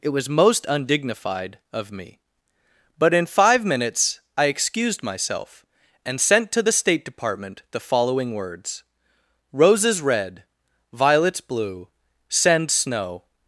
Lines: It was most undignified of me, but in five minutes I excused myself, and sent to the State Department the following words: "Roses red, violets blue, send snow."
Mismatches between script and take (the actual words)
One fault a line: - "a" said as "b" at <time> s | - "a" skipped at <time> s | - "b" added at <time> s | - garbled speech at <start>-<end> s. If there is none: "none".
none